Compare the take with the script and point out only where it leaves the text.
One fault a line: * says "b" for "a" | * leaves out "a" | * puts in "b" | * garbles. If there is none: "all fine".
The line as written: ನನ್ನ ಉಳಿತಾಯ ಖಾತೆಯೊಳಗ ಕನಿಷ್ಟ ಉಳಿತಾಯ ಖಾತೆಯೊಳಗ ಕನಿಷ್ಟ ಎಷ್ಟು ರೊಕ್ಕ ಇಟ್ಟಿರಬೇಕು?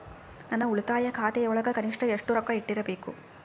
* leaves out "ಉಳಿತಾಯ ಖಾತೆಯೊಳಗ ಕನಿಷ್ಟ"